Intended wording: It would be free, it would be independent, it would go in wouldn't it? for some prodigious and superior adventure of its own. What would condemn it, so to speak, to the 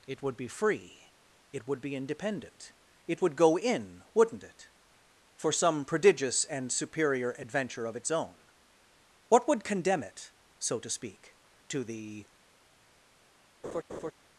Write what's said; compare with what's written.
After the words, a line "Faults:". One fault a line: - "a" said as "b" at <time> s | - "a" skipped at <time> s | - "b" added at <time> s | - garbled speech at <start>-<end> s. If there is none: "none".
It would be free, it would be independent, it would go in wouldn't it? for some prodigious and superior adventure of its own. What would condemn it, so to speak, to the
Faults:
none